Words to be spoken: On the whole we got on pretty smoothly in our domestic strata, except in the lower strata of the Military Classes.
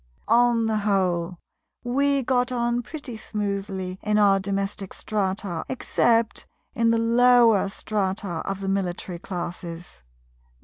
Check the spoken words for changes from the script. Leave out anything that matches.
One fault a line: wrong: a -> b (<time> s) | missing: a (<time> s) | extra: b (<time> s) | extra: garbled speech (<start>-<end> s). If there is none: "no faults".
no faults